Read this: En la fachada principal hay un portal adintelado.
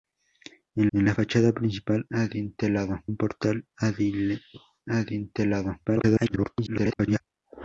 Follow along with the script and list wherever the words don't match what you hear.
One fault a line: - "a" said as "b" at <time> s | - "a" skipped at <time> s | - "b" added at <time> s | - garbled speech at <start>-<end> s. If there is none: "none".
- "en" added at 0.9 s
- "hay" said as "adintelado" at 2.1 s
- garbled speech at 5.8-7.2 s